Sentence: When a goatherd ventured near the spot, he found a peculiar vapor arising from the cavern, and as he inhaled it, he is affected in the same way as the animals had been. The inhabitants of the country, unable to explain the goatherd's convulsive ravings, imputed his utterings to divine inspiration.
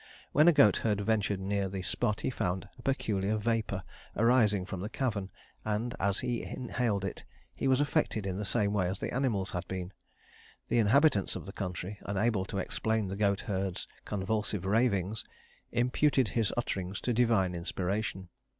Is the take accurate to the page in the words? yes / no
no